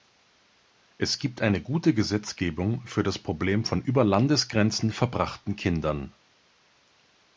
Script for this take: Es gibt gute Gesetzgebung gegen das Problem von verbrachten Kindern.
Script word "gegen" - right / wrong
wrong